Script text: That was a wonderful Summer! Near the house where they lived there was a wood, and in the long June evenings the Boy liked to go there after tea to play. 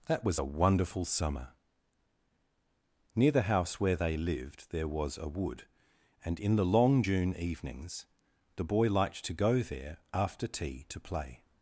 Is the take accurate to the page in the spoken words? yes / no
yes